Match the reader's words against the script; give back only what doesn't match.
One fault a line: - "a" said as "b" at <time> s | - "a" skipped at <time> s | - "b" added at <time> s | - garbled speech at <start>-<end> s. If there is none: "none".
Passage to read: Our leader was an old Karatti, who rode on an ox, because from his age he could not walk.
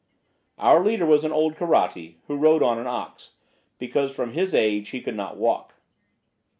none